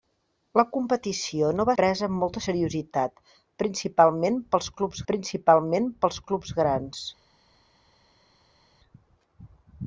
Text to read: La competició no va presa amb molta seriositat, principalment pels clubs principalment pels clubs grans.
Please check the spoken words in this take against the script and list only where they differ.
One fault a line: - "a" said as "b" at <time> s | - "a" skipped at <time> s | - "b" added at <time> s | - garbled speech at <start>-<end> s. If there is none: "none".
none